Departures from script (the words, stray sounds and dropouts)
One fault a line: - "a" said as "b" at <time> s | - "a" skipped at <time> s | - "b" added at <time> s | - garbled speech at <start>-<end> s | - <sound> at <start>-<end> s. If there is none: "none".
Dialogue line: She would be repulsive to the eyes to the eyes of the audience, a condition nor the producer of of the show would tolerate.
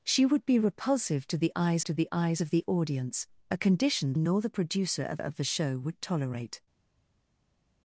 none